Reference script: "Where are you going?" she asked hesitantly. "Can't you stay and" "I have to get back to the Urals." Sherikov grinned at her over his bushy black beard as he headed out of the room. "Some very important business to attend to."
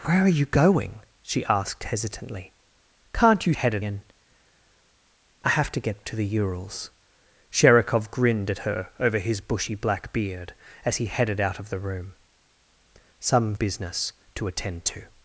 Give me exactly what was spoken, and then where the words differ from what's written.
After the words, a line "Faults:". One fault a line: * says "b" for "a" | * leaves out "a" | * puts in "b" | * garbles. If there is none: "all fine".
"Where are you going?" she asked hesitantly. "Can't you headed and" "I have to get to the Urals." Sherikov grinned at her over his bushy black beard as he headed out of the room. "Some business to attend to."
Faults:
* says "headed" for "stay"
* leaves out "back"
* leaves out "very important"